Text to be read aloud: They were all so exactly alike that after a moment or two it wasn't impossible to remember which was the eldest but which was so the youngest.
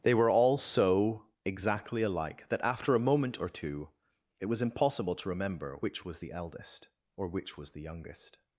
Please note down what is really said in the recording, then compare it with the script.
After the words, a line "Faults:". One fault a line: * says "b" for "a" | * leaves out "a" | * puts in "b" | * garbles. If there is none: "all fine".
They were all so exactly alike that after a moment or two it was impossible to remember which was the eldest or which was the youngest.
Faults:
* says "was" for "wasn't"
* says "or" for "but"
* leaves out "so"